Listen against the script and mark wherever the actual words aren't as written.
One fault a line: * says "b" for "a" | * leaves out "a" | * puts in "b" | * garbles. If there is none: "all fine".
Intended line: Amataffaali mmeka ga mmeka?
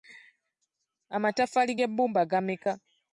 * says "g'ebbumba" for "mmeka"